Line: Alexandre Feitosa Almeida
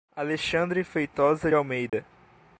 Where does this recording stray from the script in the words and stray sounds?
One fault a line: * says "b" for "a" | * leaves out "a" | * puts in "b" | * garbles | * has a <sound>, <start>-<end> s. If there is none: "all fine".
* has a dropout, 1.9-1.9 s